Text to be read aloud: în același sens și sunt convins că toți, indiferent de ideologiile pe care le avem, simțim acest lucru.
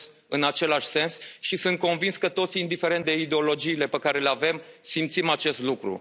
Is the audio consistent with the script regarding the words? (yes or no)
yes